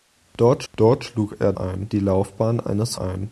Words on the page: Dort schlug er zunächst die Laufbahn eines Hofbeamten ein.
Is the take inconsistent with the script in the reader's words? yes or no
yes